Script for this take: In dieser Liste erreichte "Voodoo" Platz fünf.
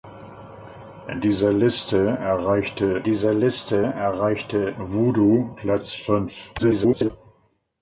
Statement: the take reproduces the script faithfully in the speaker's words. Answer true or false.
false